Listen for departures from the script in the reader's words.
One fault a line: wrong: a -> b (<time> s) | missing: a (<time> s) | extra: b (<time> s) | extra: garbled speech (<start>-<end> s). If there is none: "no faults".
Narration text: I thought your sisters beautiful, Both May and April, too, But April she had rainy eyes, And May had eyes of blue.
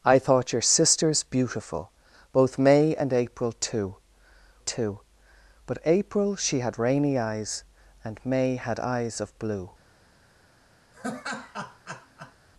extra: too (4.6 s)